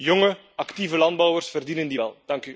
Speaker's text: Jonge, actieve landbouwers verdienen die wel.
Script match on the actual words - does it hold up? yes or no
yes